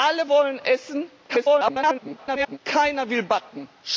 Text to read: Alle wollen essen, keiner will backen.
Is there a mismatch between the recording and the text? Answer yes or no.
yes